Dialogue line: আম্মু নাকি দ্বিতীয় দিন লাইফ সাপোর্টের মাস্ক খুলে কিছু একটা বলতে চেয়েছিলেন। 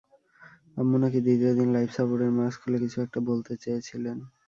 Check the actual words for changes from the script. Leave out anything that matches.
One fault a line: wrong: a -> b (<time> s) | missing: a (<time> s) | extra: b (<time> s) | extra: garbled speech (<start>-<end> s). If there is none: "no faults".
no faults